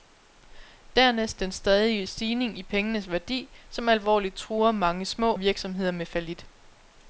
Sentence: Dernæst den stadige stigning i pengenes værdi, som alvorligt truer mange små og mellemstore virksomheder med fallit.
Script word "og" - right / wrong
wrong